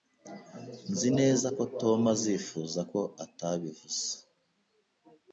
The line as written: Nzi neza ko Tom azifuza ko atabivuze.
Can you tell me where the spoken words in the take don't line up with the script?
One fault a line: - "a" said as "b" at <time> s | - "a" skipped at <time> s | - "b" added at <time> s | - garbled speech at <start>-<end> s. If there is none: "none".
none